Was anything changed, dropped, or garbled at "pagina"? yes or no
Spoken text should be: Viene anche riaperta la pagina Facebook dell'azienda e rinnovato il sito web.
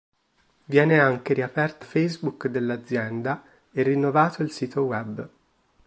yes